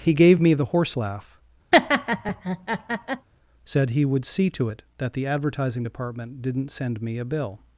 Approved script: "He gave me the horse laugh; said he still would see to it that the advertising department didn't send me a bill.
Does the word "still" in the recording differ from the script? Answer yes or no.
yes